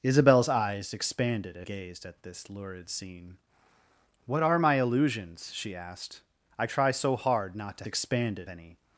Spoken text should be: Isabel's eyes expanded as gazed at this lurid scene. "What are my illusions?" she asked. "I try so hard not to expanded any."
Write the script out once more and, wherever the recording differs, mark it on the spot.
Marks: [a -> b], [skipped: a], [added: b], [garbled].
Isabel's eyes expanded as gazed at this lurid scene. "What are my illusions?" she asked. "I try so hard not to expanded any."